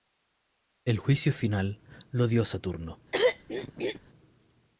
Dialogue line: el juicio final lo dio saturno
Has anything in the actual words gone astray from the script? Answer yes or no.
no